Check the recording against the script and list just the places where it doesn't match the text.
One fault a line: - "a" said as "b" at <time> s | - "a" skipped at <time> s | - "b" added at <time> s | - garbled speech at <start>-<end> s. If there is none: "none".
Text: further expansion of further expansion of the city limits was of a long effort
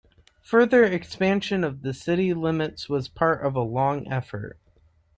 - "further expansion of" skipped at 1.8 s
- "part" added at 3.1 s